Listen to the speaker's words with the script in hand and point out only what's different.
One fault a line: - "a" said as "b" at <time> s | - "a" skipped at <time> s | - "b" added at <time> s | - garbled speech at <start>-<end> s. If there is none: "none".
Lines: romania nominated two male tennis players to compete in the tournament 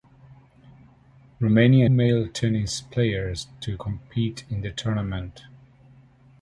- "nominated two" skipped at 1.9 s